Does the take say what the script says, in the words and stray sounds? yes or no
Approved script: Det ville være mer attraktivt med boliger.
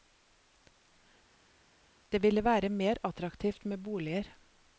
yes